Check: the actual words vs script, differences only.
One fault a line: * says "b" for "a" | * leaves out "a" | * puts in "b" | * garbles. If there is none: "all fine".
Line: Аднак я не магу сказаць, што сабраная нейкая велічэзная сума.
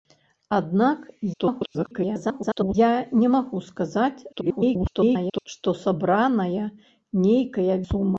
* garbles
* garbles
* leaves out "велічэзная"